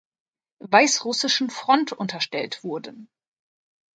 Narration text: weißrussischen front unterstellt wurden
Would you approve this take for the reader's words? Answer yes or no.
yes